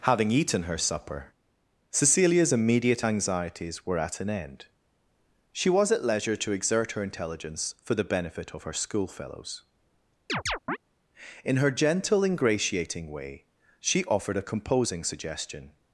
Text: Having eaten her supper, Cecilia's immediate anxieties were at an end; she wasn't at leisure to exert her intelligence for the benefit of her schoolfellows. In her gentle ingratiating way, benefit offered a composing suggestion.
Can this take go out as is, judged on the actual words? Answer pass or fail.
fail